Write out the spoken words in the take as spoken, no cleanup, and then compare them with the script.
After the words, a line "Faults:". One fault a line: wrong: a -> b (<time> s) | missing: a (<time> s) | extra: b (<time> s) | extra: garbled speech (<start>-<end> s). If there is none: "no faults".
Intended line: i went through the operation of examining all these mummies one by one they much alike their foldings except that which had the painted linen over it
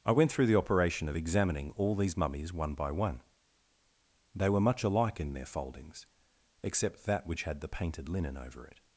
i went through the operation of examining all these mummies one by one they were much alike in their foldings except that which had the painted linen over it
Faults:
extra: were (4.5 s)
extra: in (5.2 s)